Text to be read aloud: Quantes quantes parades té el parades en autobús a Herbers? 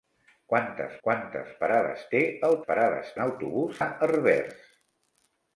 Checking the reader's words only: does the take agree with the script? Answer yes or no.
yes